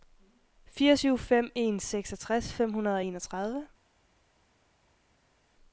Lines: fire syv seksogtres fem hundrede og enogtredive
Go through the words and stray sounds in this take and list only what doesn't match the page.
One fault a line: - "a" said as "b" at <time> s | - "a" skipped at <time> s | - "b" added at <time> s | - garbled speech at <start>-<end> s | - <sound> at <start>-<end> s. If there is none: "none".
- "fem en" added at 1.2 s